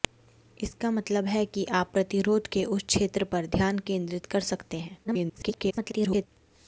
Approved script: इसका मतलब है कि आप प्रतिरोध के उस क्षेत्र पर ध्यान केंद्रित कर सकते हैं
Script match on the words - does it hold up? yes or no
no